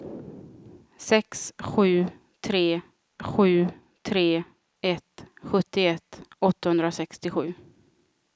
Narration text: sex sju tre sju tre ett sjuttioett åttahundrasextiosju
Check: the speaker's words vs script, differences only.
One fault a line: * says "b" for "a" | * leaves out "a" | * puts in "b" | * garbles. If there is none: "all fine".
all fine